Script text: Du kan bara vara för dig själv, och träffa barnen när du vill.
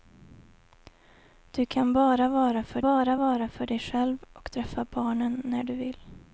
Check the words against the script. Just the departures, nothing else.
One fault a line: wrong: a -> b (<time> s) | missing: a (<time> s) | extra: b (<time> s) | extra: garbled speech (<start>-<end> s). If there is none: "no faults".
extra: bara vara för (2.8 s)